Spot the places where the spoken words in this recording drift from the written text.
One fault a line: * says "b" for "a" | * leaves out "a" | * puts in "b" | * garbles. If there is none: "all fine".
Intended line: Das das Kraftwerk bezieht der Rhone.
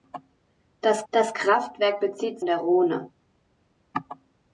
all fine